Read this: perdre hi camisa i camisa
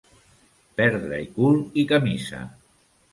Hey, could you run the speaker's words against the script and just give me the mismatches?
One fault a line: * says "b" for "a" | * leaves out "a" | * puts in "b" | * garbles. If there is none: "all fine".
* says "cul" for "camisa"